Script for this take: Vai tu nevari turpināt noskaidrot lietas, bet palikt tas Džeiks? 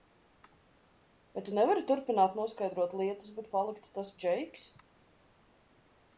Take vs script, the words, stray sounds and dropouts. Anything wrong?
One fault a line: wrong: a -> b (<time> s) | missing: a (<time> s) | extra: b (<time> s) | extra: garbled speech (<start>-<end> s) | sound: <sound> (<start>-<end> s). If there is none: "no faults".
no faults